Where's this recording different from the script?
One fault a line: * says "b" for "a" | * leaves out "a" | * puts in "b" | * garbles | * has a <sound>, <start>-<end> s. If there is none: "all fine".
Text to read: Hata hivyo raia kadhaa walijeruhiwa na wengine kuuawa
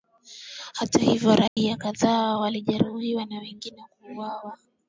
* has a dropout, 1.5-1.6 s